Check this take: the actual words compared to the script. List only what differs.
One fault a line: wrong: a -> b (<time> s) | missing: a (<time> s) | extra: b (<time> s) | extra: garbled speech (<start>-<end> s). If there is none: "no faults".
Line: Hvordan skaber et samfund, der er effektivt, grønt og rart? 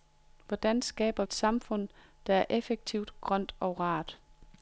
no faults